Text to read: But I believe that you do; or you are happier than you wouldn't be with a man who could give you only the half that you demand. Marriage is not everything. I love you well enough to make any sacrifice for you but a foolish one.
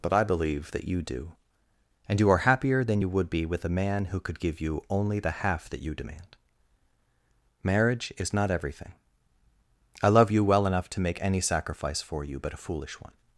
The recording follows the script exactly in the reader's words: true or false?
false